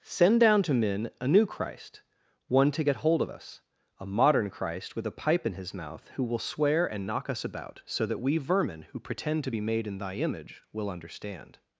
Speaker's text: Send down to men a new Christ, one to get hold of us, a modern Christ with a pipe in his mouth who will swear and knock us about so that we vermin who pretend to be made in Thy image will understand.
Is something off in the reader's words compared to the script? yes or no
no